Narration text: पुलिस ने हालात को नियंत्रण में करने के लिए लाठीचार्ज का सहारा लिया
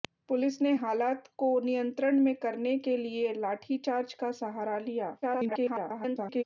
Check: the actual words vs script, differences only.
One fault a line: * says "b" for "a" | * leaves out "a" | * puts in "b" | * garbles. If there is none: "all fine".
* garbles